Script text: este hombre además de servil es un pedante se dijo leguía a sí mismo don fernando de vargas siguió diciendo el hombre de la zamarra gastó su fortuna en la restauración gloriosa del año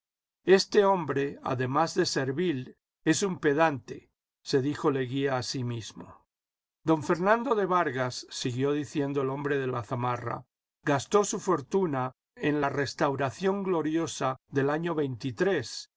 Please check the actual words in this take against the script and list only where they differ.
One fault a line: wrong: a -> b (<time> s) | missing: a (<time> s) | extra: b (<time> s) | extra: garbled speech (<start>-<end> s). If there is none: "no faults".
no faults